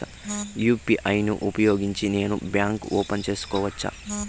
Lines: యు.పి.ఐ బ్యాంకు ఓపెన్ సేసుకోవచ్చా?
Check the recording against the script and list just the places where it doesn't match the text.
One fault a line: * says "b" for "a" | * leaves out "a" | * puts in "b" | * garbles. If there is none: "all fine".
* puts in "ను ఉపయోగించి నేను"